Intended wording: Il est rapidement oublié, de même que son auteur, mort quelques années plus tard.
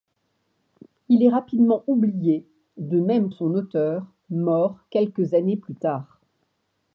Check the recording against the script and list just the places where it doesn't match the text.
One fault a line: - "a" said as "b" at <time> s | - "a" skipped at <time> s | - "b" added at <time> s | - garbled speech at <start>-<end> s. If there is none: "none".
- "que" skipped at 3.3 s